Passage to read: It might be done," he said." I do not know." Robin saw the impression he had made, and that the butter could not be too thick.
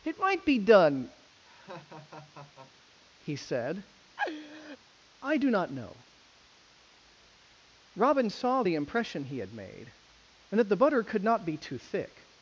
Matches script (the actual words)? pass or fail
pass